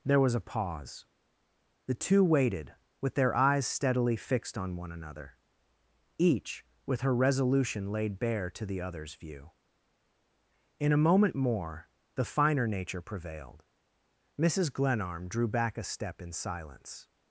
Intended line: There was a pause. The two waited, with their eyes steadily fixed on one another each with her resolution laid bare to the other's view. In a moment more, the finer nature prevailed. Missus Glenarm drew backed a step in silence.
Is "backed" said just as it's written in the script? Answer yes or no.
no